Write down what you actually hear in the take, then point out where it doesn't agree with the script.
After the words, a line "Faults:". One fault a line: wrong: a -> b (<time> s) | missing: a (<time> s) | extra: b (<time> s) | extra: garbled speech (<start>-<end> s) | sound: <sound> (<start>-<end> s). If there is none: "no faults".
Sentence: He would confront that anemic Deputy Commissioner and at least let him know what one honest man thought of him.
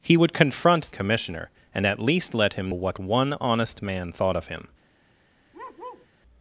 He would confront Commissioner and at least let him what one honest man thought of him.
Faults:
missing: that anemic Deputy (0.9 s)
missing: know (2.7 s)
sound: bark (5.5-6.1 s)